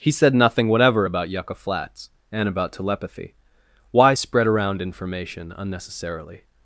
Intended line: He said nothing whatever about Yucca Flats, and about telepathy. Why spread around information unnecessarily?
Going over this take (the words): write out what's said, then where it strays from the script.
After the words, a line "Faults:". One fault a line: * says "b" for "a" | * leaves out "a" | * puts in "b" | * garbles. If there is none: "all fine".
He said nothing whatever about Yucca Flats, and about telepathy. Why spread around information unnecessarily?
Faults:
all fine